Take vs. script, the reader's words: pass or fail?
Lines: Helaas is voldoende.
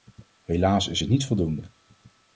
fail